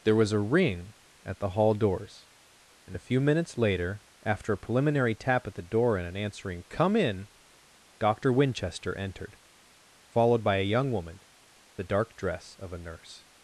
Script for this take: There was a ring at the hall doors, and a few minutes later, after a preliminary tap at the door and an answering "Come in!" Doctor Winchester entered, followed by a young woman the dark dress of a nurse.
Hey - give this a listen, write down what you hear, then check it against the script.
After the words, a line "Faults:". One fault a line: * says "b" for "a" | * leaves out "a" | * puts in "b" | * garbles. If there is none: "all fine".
There was a ring at the hall doors, and a few minutes later, after a preliminary tap at the door and an answering "Come in!" Doctor Winchester entered, followed by a young woman the dark dress of a nurse.
Faults:
all fine